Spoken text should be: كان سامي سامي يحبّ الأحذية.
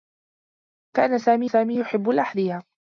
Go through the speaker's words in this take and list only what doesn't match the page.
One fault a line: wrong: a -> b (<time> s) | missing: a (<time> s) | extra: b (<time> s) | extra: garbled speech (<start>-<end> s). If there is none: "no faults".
no faults